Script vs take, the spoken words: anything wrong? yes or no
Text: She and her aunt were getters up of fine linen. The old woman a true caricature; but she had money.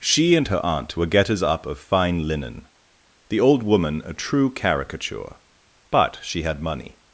no